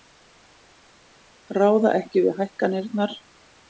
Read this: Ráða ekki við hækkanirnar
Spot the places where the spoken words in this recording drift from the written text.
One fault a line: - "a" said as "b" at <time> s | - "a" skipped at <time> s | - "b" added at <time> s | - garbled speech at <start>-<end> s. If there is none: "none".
none